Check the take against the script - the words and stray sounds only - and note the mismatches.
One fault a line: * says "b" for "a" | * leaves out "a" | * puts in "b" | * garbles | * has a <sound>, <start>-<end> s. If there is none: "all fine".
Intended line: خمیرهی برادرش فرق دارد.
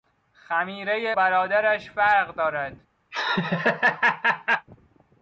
* has a laugh, 3.1-4.7 s